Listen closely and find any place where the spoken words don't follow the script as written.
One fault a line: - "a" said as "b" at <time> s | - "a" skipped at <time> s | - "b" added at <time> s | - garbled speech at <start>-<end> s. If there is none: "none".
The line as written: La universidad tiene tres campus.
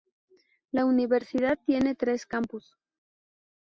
none